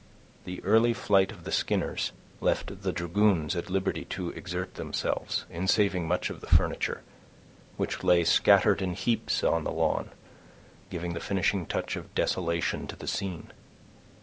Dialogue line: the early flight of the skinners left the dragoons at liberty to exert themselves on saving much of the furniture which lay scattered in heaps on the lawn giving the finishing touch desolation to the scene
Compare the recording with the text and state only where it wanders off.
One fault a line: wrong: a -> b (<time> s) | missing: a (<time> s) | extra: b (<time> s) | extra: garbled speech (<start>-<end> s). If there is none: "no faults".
wrong: on -> in (5.5 s)
extra: of (12.0 s)